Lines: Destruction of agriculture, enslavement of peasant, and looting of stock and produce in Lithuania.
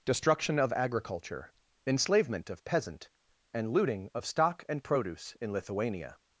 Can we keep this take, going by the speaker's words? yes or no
yes